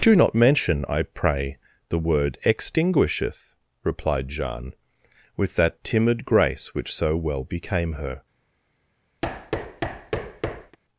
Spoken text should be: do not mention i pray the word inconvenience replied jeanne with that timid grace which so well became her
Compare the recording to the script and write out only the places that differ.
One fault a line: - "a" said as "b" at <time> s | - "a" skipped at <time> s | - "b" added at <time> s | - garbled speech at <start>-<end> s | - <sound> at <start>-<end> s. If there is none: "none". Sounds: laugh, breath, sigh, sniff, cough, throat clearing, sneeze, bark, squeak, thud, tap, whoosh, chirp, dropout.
- "inconvenience" said as "extinguisheth" at 2.4 s
- thud at 9.2-10.8 s